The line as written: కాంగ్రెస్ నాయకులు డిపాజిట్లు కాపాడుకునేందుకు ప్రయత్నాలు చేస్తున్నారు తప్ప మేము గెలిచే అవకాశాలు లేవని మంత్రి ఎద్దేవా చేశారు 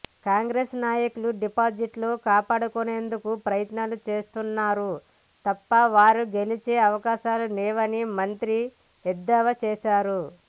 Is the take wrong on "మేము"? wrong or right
wrong